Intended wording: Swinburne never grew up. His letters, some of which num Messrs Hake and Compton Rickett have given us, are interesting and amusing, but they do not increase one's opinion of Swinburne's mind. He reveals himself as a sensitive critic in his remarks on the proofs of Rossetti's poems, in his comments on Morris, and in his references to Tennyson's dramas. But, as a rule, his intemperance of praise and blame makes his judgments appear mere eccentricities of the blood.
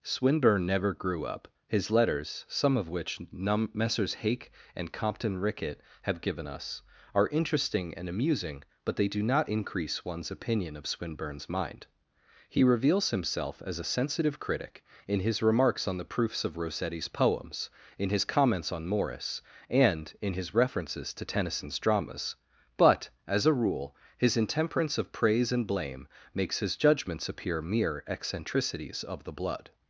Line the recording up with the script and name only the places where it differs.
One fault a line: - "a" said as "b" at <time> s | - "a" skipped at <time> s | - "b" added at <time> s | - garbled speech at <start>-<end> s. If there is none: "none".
none